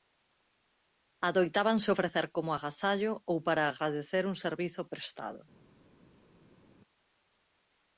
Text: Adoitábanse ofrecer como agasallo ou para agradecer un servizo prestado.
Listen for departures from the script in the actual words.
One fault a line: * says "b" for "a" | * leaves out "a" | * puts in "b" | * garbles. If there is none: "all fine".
all fine